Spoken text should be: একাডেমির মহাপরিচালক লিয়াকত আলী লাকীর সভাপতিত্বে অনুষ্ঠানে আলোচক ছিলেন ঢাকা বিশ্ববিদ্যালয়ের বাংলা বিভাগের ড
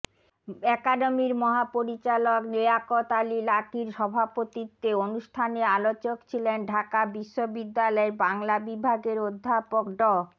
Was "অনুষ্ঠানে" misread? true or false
false